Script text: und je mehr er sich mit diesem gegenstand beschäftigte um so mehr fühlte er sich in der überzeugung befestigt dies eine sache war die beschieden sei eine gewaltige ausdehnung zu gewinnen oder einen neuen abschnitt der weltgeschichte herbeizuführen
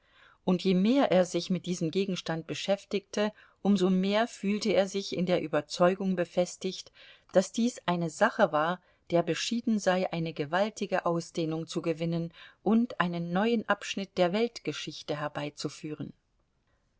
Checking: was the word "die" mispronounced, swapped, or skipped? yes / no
yes